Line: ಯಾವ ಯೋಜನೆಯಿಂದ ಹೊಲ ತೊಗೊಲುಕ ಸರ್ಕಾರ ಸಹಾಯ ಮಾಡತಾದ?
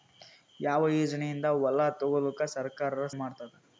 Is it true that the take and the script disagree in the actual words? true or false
true